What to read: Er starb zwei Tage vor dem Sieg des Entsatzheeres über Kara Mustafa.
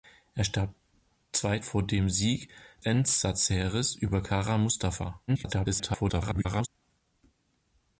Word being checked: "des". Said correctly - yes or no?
no